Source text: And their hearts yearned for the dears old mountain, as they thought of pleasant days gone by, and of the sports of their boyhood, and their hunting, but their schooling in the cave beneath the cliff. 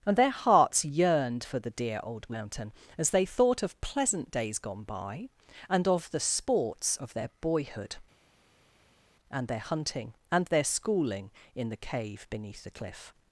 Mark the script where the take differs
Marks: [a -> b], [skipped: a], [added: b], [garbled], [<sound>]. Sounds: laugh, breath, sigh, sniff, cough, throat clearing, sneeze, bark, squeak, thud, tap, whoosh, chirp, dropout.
And their hearts yearned for the [dears -> dear] old mountain, as they thought of pleasant days gone by, and of the sports of their boyhood, and their hunting, [but -> and] their schooling in the cave beneath the cliff.